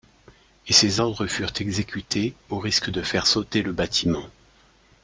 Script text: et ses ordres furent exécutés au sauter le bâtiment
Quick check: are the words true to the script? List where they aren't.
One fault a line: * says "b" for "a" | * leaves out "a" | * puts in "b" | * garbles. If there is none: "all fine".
* puts in "risque de faire"